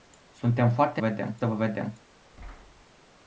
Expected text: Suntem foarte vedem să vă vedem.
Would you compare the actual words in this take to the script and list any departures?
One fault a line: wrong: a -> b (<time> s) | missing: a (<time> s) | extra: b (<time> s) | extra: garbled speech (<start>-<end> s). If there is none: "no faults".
no faults